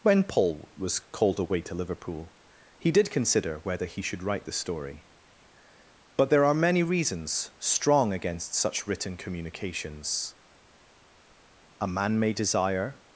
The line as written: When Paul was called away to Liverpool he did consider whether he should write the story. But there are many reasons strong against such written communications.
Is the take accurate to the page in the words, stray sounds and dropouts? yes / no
no